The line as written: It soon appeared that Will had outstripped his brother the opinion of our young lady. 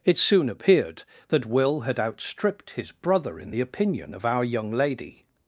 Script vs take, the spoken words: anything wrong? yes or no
yes